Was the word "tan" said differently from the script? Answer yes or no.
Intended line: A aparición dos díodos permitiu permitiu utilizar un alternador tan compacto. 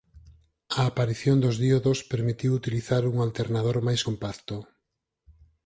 yes